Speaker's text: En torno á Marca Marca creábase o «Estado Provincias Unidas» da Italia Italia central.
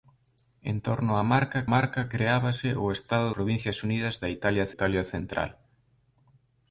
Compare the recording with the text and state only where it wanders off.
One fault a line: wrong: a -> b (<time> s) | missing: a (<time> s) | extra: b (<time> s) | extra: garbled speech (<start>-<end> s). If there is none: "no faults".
no faults